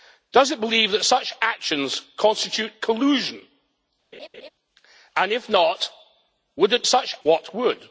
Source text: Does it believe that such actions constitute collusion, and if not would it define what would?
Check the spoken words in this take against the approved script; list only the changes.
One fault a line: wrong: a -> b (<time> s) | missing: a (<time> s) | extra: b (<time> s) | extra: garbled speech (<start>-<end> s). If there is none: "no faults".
wrong: define -> such (6.9 s)